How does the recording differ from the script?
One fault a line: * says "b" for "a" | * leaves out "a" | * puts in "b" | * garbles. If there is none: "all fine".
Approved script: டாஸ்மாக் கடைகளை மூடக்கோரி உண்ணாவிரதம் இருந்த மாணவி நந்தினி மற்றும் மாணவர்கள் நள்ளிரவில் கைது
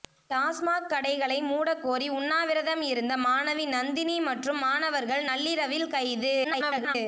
* garbles